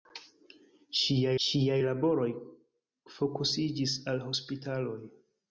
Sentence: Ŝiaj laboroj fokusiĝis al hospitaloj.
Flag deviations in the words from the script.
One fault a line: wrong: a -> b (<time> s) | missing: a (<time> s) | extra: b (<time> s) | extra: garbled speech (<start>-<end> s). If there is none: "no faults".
extra: ŝiaj (1.4 s)